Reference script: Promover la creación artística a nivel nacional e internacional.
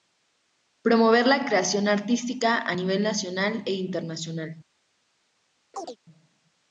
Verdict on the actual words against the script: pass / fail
pass